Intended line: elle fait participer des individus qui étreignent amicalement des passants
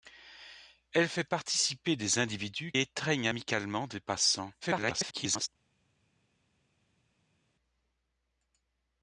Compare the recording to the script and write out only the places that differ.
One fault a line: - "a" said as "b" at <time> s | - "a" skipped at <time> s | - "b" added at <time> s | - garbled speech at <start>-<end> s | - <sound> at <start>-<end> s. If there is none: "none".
- "qui" skipped at 2.7 s
- garbled speech at 4.6-5.5 s